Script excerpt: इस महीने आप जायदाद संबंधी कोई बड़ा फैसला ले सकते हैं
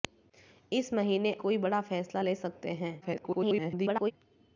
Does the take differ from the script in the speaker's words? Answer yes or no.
yes